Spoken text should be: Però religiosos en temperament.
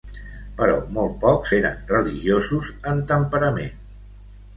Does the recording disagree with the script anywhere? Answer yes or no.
yes